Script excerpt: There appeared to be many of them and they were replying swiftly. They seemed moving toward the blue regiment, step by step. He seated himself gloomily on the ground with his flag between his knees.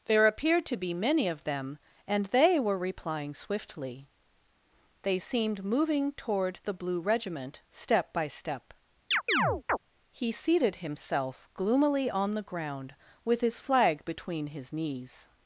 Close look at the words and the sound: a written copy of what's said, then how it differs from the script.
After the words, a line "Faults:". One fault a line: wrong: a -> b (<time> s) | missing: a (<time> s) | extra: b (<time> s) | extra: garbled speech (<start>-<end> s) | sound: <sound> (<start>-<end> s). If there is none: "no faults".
There appeared to be many of them and they were replying swiftly. They seemed moving toward the blue regiment, step by step. He seated himself gloomily on the ground with his flag between his knees.
Faults:
sound: chirp (9.1-9.8 s)